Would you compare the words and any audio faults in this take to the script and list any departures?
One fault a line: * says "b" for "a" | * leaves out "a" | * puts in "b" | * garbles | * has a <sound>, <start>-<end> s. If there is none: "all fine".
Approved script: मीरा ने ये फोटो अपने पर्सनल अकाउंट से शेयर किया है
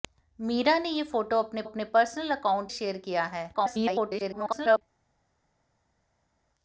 * puts in "अपने"
* leaves out "से"
* garbles